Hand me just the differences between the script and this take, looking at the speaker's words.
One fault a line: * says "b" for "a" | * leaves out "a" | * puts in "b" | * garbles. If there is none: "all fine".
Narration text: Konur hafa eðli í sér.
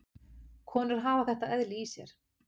* puts in "þetta"